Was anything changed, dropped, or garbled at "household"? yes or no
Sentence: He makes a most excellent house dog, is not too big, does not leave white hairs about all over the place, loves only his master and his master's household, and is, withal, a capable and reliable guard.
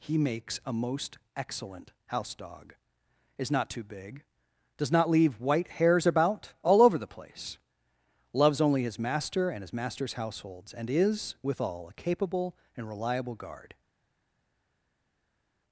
yes